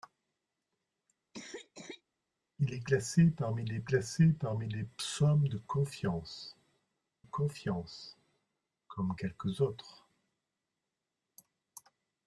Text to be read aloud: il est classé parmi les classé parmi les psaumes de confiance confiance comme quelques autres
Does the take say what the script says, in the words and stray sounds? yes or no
no